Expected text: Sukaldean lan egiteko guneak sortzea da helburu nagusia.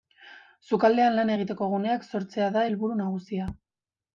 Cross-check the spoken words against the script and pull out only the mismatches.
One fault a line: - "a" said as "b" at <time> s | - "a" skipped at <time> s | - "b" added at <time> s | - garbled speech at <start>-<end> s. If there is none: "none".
none